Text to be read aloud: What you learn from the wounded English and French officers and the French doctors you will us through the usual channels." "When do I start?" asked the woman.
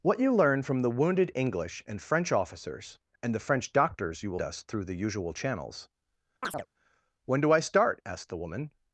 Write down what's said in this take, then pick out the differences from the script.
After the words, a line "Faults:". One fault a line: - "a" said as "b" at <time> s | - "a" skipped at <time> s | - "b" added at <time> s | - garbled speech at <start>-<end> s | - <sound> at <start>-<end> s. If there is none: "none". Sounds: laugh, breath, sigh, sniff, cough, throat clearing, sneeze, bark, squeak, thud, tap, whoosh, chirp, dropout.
What you learn from the wounded English and French officers and the French doctors you will us through the usual channels." "When do I start?" asked the woman.
Faults:
- chirp at 6.4-6.7 s